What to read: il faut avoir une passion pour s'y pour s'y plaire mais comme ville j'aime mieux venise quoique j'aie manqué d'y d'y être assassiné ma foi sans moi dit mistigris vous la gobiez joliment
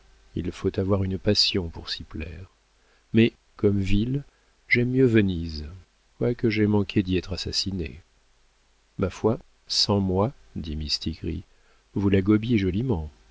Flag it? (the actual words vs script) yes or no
yes